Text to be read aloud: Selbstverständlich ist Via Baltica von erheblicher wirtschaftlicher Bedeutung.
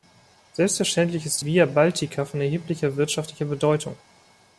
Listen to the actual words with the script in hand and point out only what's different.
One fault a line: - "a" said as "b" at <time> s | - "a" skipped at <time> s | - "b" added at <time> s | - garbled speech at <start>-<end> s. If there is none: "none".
none